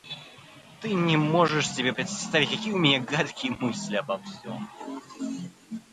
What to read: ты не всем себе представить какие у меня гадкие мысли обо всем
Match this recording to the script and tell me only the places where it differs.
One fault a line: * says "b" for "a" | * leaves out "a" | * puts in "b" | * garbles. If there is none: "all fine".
* says "можешь" for "всем"